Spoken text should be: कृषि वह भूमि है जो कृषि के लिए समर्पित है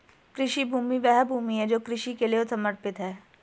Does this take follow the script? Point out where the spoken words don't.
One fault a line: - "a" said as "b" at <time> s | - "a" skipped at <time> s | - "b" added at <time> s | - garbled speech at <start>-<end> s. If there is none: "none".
- "भूमि" added at 0.7 s